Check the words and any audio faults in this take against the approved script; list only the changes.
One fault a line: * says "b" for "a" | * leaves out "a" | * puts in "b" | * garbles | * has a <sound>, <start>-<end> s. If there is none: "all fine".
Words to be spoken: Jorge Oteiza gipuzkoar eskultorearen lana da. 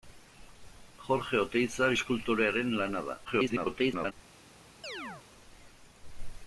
* leaves out "gipuzkoar"
* garbles
* has a chirp, 4.8-5.3 s